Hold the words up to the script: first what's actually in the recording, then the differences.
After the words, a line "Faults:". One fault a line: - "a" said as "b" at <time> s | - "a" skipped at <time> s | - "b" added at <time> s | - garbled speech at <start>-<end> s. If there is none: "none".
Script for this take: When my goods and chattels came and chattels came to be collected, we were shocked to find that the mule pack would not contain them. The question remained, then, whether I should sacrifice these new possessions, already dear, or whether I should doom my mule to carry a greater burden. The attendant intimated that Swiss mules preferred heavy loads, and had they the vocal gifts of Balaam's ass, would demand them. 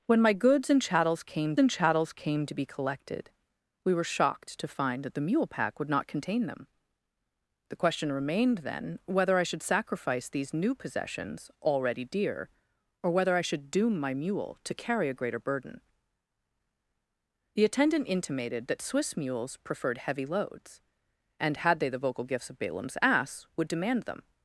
When my goods and chattels came and chattels came to be collected, we were shocked to find that the mule pack would not contain them. The question remained, then, whether I should sacrifice these new possessions, already dear, or whether I should doom my mule to carry a greater burden. The attendant intimated that Swiss mules preferred heavy loads, and had they the vocal gifts of Balaam's ass, would demand them.
Faults:
none